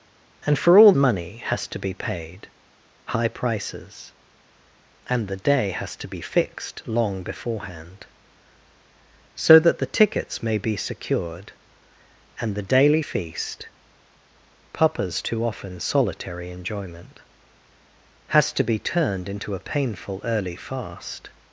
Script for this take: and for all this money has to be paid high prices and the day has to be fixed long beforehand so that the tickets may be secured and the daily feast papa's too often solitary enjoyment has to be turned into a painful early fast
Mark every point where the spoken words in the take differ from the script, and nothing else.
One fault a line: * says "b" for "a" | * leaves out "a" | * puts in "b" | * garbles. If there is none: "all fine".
* leaves out "this"